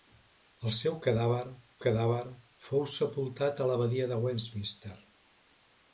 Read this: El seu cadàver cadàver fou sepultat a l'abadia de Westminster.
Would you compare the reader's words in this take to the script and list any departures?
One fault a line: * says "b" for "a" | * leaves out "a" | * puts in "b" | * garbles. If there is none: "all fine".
all fine